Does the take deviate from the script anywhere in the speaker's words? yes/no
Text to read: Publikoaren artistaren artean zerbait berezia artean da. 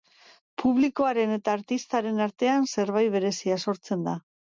yes